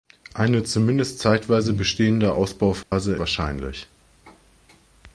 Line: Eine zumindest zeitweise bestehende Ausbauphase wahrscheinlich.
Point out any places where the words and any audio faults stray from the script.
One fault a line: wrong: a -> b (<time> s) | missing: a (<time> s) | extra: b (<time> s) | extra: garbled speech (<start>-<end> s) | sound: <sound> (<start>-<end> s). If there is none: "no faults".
sound: dropout (2.8-2.9 s)